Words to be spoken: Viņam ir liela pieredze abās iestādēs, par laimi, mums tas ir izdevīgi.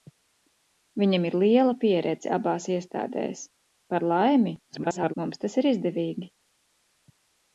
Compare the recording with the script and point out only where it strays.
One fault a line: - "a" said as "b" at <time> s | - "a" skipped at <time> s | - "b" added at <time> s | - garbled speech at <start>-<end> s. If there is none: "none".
- garbled speech at 4.7-5.1 s